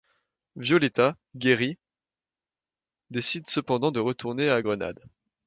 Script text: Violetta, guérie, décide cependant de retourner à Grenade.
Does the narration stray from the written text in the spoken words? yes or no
no